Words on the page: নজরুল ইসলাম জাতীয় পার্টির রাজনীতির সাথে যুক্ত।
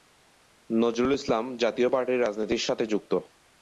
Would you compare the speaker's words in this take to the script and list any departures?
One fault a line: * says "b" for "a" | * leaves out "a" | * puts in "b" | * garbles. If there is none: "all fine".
all fine